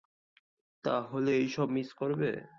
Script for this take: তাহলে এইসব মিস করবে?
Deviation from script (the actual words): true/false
false